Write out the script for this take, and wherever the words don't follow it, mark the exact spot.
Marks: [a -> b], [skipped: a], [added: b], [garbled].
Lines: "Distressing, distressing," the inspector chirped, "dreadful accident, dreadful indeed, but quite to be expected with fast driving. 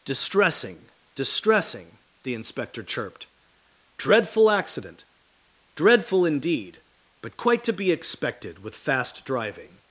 "Distressing, distressing," the inspector chirped, "dreadful accident, dreadful indeed, but quite to be expected with fast driving.